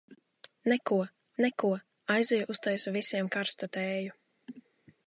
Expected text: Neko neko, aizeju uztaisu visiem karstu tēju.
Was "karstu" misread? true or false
false